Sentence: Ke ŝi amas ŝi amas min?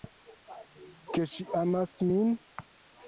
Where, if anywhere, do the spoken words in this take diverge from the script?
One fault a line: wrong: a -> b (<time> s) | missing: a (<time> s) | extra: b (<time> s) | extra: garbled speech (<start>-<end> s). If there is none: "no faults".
missing: ŝi amas (1.9 s)